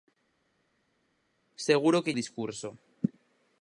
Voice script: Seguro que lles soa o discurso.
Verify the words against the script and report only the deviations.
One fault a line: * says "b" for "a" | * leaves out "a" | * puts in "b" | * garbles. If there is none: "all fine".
* leaves out "lles soa"